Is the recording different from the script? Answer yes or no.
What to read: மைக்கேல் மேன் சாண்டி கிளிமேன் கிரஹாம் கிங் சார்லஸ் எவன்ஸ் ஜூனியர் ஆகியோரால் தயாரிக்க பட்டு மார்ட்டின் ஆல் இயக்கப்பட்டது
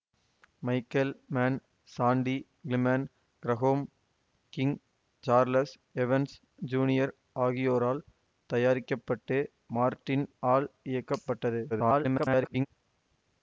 yes